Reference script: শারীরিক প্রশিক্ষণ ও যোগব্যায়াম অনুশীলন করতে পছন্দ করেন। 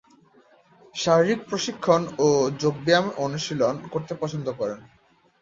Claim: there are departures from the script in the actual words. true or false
false